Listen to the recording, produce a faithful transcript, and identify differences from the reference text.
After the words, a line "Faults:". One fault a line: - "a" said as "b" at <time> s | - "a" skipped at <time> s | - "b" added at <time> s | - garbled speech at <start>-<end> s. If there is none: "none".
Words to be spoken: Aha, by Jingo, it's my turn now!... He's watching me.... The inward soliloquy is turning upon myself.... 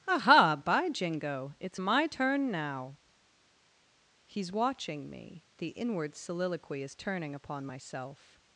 Aha, by Jingo, it's my turn now!... He's watching me.... The inward soliloquy is turning upon myself....
Faults:
none